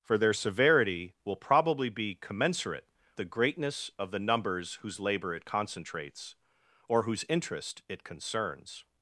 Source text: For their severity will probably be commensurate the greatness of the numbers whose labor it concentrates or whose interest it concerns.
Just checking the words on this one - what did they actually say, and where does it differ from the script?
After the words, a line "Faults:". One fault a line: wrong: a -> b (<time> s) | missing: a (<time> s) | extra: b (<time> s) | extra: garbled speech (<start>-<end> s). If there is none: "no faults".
For their severity will probably be commensurate the greatness of the numbers whose labor it concentrates or whose interest it concerns.
Faults:
no faults